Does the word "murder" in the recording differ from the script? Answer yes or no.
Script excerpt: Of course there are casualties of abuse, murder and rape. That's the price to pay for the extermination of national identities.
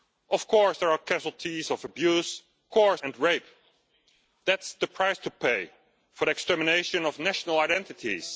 yes